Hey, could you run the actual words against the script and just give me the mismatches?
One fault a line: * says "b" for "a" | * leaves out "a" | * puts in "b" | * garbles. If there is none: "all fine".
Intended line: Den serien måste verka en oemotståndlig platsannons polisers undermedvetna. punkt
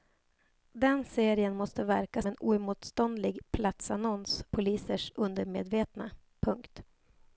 all fine